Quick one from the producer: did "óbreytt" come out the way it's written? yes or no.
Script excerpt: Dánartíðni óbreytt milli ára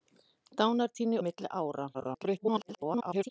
no